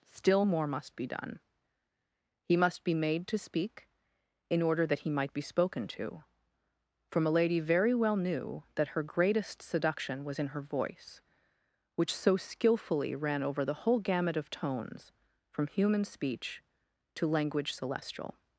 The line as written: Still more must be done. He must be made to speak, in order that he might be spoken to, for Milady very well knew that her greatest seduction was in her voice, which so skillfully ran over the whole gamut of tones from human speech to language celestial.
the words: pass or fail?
pass